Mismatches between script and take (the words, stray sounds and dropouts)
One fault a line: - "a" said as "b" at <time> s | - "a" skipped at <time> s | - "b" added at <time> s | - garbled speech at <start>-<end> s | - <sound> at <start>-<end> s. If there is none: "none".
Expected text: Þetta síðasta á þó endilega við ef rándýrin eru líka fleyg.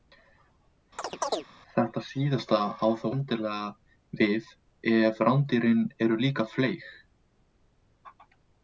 - chirp at 1.0-1.5 s